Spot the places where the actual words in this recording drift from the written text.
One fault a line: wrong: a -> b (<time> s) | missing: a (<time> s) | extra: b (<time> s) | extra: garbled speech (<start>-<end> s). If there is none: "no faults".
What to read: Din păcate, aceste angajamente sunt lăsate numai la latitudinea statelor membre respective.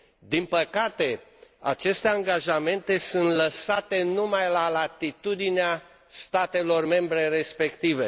no faults